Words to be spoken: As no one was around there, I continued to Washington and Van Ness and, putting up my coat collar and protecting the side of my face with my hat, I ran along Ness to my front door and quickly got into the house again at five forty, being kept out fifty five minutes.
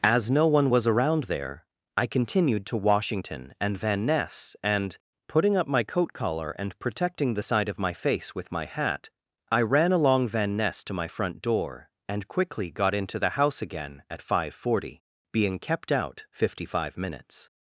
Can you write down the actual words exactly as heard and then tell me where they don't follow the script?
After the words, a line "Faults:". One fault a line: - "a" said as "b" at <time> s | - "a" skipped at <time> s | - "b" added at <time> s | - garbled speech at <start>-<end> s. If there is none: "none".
As no one was around there, I continued to Washington and Van Ness and, putting up my coat collar and protecting the side of my face with my hat, I ran along Van Ness to my front door and quickly got into the house again at five forty, being kept out fifty five minutes.
Faults:
- "Van" added at 10.3 s